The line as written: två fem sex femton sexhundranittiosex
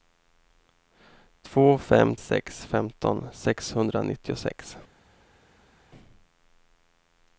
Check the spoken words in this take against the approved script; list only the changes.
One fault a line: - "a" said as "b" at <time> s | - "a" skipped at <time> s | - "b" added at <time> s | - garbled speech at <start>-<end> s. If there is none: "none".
none